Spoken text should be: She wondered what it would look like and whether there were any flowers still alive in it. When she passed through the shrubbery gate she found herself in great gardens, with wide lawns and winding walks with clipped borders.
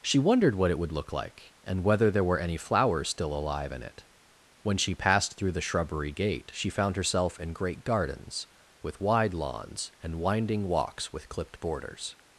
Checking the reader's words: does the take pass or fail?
pass